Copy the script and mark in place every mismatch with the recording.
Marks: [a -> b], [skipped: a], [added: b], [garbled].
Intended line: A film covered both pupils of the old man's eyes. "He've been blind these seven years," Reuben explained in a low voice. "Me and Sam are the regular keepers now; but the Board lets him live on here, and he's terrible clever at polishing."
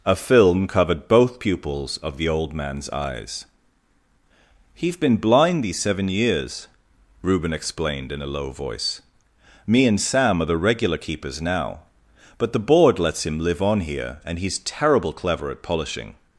A film covered both pupils of the old man's eyes. "He've been blind these seven years," Reuben explained in a low voice. "Me and Sam are the regular keepers now; but the Board lets him live on here, and he's terrible clever at polishing."